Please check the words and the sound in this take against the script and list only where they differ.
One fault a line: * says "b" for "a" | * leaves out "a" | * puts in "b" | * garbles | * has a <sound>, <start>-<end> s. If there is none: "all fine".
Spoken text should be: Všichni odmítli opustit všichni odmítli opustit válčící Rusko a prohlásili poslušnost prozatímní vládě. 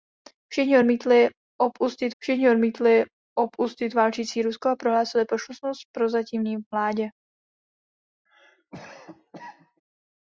* has a cough, 8.3-9.8 s